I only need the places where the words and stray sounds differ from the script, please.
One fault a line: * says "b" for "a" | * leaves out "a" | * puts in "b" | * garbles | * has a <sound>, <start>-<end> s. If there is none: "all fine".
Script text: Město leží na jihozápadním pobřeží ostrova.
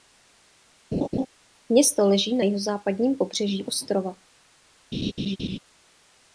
* has a laugh, 0.9-1.3 s
* has a laugh, 4.9-5.6 s